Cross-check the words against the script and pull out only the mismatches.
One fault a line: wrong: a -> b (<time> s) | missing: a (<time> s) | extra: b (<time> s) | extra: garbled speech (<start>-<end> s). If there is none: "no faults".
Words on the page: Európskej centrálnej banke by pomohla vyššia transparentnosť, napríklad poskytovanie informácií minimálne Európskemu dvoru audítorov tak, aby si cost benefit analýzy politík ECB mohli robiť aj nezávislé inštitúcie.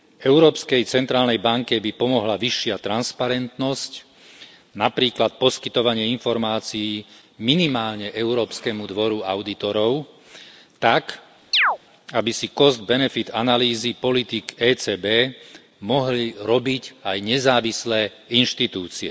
no faults